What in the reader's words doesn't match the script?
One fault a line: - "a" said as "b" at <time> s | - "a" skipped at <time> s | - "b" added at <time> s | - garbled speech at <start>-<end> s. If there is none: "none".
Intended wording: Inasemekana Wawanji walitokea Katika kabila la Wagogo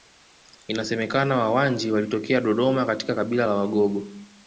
- "Dodoma" added at 2.4 s